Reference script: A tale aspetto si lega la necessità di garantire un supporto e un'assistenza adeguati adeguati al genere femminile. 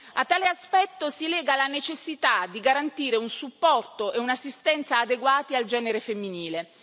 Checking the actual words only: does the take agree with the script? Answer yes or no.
no